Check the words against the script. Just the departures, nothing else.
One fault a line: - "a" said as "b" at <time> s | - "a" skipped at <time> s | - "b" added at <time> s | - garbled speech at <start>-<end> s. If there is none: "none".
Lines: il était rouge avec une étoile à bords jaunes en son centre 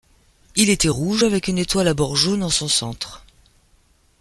none